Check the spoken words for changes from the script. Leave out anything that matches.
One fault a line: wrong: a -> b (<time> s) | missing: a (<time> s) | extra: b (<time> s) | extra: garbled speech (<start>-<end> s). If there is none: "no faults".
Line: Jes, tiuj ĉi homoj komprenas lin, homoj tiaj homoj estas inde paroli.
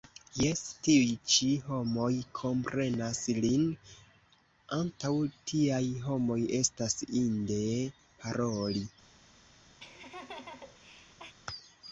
wrong: homoj -> antaŭ (4.8 s)